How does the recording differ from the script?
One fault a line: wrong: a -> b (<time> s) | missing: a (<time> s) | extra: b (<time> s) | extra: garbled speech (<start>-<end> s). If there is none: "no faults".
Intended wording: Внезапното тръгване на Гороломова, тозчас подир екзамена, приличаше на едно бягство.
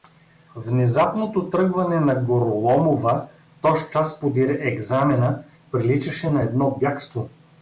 no faults